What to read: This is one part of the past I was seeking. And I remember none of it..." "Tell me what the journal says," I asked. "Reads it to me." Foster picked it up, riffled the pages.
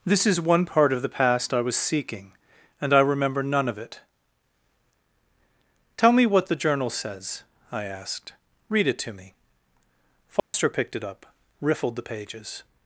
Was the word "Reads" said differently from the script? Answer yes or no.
yes